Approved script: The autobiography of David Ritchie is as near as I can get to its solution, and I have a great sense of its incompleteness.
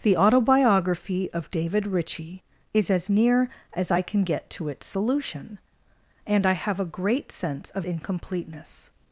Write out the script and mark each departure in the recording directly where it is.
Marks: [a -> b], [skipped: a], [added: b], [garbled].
The autobiography of David Ritchie is as near as I can get to its solution, and I have a great sense of [skipped: its] incompleteness.